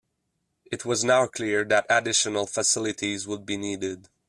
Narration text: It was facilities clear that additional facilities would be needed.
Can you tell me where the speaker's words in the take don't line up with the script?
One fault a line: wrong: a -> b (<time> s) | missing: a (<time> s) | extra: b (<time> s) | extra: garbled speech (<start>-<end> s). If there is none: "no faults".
wrong: facilities -> now (1.0 s)